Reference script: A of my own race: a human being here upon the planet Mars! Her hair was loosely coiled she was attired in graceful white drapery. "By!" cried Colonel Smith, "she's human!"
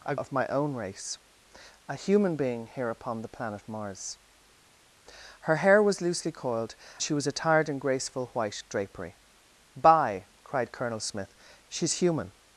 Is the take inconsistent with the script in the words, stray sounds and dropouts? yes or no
no